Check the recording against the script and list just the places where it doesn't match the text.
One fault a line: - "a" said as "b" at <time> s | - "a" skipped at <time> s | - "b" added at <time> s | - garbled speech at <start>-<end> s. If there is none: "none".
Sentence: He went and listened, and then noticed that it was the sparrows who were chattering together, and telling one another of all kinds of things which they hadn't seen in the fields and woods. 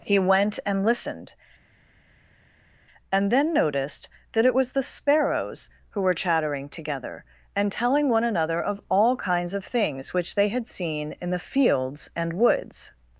- "hadn't" said as "had" at 10.5 s